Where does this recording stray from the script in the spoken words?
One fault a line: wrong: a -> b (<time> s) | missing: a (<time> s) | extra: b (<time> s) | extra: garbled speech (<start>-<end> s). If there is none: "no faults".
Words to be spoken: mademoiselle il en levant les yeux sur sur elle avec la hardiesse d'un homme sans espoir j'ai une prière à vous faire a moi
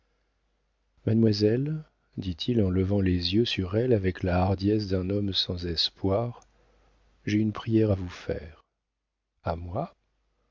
extra: dit (2.2 s)
missing: sur (3.8 s)